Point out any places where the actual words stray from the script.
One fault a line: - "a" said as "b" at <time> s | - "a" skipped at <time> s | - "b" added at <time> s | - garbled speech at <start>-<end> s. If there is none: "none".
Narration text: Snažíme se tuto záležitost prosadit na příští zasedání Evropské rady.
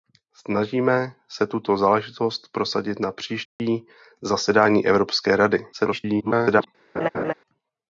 - garbled speech at 5.7-6.7 s